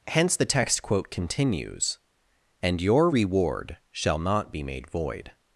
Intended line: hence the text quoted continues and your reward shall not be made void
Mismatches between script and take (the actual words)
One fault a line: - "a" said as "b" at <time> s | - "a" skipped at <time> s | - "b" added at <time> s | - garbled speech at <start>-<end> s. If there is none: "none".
- "quoted" said as "quote" at 0.8 s